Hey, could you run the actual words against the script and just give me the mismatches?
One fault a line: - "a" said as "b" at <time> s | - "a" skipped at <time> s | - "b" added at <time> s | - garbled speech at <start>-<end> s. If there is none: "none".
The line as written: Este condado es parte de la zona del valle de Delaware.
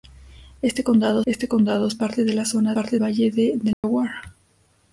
- "este condado" added at 1.3 s
- "del" said as "parte" at 2.7 s